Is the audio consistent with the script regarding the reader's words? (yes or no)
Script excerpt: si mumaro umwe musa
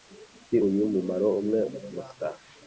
no